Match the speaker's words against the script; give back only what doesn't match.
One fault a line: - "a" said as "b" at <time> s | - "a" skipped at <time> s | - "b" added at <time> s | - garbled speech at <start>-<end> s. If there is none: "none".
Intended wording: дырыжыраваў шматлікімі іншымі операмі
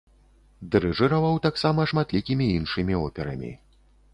- "таксама" added at 1.5 s